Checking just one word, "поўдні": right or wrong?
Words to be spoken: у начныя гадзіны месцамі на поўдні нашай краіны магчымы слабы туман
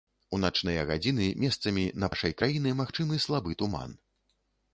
wrong